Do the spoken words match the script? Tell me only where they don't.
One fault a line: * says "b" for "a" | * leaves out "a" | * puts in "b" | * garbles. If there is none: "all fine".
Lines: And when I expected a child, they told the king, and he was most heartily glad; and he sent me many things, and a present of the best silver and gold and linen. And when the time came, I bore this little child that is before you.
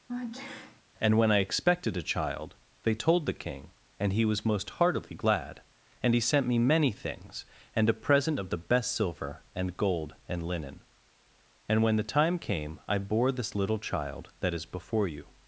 all fine